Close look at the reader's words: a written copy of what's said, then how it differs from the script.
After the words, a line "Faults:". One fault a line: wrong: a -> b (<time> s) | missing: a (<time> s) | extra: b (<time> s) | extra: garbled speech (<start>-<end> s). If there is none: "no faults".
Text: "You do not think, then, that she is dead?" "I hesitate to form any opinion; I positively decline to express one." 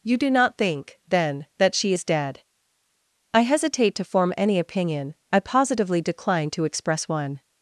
"You do not think, then, that she is dead?" "I hesitate to form any opinion; I positively decline to express one."
Faults:
no faults